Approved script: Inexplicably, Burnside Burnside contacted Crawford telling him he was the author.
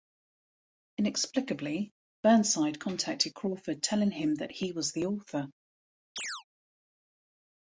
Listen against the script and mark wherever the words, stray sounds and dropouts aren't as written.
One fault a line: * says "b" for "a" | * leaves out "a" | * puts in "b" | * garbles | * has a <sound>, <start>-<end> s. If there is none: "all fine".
* leaves out "Burnside"
* puts in "that"
* has a chirp, 6.2-6.4 s